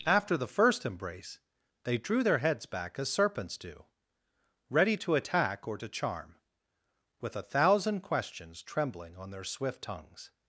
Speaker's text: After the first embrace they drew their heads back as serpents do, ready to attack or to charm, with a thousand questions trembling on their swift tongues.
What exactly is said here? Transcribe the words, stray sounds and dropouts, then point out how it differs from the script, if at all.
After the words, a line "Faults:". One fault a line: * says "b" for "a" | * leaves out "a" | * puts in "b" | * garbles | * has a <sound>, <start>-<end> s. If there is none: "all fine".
After the first embrace they drew their heads back as serpents do, ready to attack or to charm, with a thousand questions trembling on their swift tongues.
Faults:
all fine